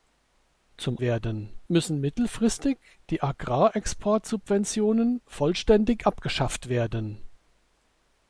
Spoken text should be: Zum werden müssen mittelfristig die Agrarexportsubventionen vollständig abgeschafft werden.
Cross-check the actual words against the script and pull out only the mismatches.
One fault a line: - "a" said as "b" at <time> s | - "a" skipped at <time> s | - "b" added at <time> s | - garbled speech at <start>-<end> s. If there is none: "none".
none